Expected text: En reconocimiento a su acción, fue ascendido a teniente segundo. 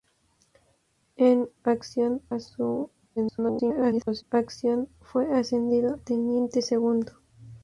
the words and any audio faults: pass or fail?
fail